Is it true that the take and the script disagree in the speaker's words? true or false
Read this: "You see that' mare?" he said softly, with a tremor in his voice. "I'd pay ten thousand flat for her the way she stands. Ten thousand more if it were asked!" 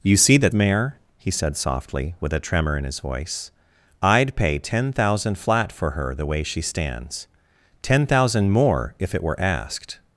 false